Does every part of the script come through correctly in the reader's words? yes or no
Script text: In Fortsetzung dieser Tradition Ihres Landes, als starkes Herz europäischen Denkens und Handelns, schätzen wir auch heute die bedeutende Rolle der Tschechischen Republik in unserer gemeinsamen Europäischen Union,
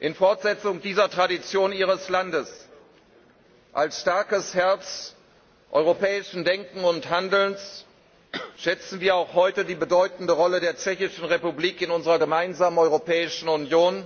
yes